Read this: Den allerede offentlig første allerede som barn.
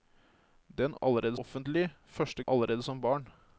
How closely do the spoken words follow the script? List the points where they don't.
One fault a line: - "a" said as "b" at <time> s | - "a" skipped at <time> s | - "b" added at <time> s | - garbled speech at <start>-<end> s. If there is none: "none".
none